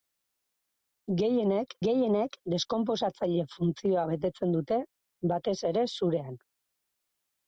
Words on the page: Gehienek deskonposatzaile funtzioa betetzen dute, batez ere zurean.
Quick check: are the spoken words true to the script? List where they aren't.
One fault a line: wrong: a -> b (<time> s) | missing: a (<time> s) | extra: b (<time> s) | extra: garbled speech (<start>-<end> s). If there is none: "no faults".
extra: gehienek (1.8 s)